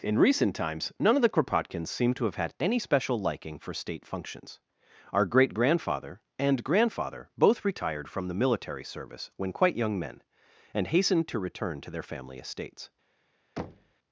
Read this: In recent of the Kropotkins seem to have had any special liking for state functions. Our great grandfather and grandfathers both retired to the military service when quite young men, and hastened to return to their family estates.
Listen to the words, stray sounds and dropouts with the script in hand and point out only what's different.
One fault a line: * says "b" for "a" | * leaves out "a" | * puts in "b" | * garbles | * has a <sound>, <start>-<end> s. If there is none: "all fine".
* puts in "times none"
* says "grandfather" for "grandfathers"
* says "from" for "to"
* has a thud, 13.6-13.9 s